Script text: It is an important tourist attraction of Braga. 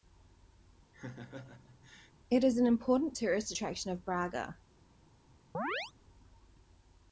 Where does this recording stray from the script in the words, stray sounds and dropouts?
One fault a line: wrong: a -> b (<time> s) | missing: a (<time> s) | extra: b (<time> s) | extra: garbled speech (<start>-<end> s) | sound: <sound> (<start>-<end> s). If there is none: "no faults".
sound: laugh (0.9-2.1 s)
sound: chirp (5.5-5.9 s)